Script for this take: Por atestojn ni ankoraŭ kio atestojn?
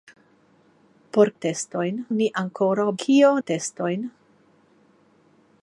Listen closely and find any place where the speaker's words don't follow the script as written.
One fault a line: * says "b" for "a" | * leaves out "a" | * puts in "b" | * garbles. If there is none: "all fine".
all fine